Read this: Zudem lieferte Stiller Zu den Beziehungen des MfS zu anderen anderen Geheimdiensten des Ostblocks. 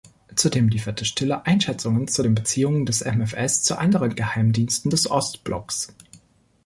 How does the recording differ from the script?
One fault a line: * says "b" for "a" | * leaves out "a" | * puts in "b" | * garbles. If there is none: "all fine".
* puts in "Einschätzungen"
* leaves out "anderen"